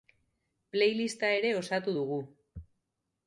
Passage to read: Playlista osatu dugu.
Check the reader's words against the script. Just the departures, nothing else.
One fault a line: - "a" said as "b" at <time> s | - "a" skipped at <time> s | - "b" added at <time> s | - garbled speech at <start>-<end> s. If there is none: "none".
- "ere" added at 1.4 s